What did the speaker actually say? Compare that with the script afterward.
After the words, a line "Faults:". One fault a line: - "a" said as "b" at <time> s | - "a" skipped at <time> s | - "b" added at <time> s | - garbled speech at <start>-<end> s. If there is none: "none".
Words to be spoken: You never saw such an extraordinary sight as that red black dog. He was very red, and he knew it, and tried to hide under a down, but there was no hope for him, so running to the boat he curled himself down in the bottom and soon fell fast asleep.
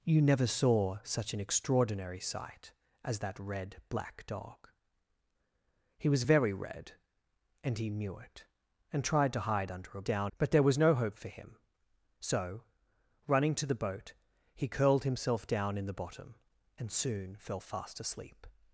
You never saw such an extraordinary sight as that red black dog. He was very red, and he knew it, and tried to hide under a down, but there was no hope for him, so running to the boat he curled himself down in the bottom and soon fell fast asleep.
Faults:
none